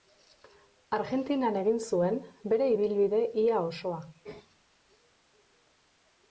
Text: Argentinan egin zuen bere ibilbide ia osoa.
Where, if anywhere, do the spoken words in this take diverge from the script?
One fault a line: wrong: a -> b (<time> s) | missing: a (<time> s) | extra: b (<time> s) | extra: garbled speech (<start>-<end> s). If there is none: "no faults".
no faults